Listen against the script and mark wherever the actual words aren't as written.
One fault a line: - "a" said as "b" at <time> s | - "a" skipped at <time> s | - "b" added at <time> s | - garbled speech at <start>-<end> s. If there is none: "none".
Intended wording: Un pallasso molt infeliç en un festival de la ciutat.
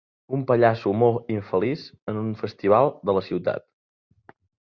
none